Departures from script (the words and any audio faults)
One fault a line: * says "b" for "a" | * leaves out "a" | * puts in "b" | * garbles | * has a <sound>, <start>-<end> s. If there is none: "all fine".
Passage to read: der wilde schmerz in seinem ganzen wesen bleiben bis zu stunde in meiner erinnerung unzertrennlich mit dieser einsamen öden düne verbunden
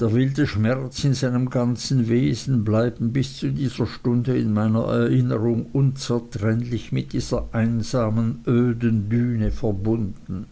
* puts in "dieser"